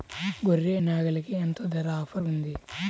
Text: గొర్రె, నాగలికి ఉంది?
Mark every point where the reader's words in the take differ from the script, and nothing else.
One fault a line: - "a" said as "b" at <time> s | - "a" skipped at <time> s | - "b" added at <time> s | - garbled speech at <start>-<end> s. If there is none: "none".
- "ఎంత ధర ఆఫర్" added at 1.4 s